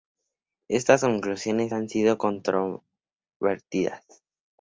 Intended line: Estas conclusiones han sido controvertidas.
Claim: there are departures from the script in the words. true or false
false